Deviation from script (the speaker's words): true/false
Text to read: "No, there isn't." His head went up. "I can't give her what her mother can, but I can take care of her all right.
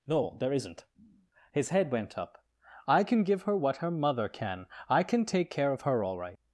true